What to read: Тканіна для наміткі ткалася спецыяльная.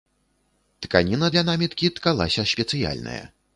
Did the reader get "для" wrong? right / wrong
right